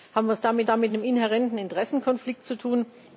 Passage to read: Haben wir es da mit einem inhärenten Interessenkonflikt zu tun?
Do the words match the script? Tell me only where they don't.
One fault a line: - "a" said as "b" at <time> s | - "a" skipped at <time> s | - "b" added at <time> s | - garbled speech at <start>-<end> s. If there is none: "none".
- "da mit" added at 0.6 s